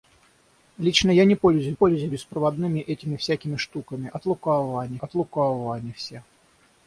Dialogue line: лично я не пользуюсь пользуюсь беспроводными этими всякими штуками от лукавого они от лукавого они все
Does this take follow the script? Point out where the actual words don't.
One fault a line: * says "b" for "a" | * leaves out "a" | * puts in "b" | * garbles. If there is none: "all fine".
all fine